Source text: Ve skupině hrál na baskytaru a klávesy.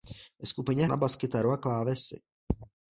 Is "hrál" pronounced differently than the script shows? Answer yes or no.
yes